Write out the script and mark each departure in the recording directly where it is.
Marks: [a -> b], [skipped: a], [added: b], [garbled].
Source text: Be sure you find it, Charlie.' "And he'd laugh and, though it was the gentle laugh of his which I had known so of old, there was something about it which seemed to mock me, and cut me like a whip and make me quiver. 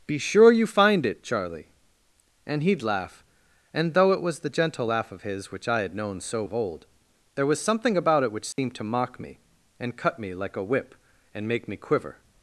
Be sure you find it, Charlie.' "And he'd laugh and, though it was the gentle laugh of his which I had known so of old, there was something about it which seemed to mock me, and cut me like a whip and make me quiver.